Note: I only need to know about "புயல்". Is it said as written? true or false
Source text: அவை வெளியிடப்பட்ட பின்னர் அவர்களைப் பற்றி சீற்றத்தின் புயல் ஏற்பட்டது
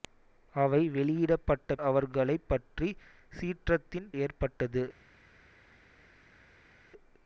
false